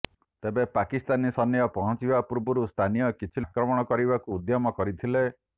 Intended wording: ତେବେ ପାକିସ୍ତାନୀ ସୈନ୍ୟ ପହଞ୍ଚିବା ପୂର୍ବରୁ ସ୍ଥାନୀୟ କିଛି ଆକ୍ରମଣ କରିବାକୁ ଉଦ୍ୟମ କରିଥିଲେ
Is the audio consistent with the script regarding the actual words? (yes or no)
yes